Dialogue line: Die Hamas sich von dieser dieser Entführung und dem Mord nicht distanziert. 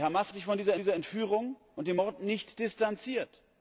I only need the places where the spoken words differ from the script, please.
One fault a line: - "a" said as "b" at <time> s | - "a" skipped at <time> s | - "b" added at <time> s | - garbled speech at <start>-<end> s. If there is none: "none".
none